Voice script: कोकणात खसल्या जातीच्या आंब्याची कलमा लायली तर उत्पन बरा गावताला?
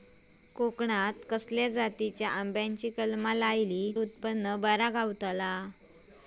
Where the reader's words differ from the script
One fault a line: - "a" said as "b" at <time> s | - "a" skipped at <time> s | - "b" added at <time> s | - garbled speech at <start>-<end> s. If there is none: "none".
- "तर" skipped at 3.9 s